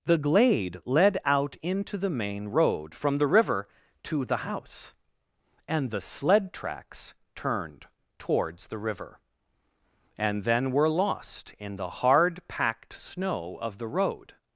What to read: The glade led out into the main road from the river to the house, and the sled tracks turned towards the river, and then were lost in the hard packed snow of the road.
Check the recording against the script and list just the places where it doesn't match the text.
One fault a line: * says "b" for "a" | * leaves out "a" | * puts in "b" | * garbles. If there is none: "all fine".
all fine